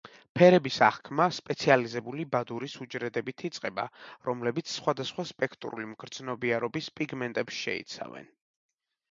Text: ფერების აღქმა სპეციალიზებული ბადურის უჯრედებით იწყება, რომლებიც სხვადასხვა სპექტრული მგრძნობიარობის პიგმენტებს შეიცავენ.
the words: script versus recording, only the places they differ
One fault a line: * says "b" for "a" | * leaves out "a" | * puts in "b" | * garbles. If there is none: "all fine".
all fine